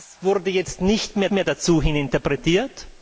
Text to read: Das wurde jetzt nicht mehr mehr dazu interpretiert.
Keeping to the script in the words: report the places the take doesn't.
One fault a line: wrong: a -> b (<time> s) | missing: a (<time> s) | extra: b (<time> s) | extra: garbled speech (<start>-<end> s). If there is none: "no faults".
no faults